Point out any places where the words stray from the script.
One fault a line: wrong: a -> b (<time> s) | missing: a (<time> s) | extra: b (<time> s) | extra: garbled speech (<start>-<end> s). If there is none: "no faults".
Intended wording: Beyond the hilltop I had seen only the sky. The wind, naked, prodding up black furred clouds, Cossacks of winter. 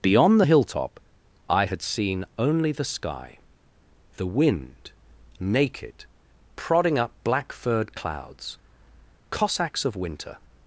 no faults